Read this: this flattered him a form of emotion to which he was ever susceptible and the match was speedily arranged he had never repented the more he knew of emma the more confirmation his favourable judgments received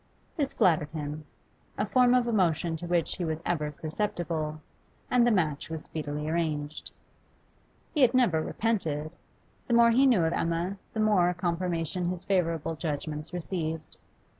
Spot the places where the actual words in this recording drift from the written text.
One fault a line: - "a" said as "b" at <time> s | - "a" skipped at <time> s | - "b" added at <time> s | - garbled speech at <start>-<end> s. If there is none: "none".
none